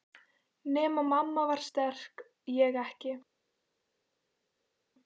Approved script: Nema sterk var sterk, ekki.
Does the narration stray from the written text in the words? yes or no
yes